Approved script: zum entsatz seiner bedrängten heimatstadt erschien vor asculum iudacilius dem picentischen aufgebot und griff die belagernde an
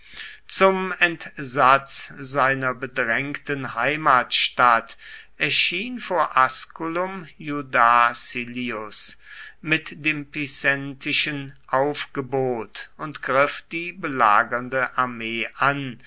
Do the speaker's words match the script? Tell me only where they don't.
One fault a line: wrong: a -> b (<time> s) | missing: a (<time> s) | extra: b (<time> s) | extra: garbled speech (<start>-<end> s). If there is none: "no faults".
extra: mit (9.6 s)
extra: armee (15.0 s)